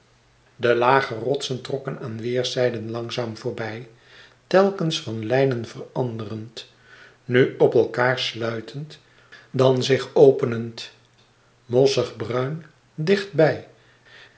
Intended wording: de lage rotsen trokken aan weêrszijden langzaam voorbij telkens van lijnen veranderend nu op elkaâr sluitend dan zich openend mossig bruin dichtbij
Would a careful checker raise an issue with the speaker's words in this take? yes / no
no